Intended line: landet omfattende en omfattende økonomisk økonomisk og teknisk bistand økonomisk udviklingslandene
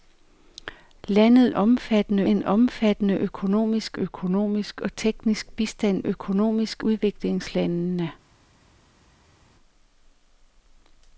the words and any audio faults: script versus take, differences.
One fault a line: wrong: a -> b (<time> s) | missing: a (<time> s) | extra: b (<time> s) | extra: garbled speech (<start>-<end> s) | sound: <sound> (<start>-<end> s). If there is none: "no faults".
no faults